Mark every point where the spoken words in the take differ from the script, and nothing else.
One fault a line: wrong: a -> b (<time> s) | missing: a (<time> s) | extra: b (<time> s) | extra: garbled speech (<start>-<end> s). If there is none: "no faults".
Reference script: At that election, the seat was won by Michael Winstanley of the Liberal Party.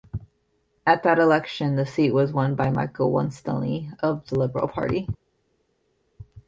no faults